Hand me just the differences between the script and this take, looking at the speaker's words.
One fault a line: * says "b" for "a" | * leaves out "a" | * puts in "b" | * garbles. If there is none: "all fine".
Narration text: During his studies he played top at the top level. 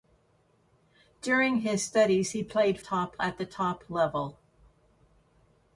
all fine